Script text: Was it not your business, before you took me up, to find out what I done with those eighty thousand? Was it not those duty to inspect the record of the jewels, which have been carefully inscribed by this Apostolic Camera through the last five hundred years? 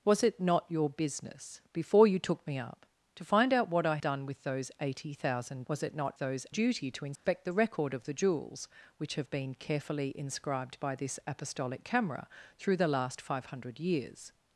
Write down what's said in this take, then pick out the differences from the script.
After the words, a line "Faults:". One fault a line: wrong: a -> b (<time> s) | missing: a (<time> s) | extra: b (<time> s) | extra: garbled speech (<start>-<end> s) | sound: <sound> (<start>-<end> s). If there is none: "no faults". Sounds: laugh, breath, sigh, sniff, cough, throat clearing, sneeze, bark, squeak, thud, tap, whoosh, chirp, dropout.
Was it not your business, before you took me up, to find out what I done with those eighty thousand? Was it not those duty to inspect the record of the jewels, which have been carefully inscribed by this Apostolic Camera through the last five hundred years?
Faults:
sound: dropout (7.2-7.3 s)